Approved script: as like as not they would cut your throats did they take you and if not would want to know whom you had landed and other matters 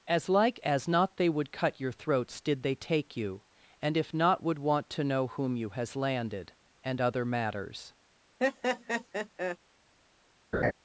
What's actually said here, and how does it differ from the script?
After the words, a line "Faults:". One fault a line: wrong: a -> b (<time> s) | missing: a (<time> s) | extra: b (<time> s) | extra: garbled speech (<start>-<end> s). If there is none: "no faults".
as like as not they would cut your throats did they take you and if not would want to know whom you has landed and other matters
Faults:
wrong: had -> has (5.7 s)